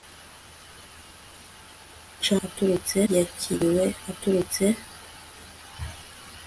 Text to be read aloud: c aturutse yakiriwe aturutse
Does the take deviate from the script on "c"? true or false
false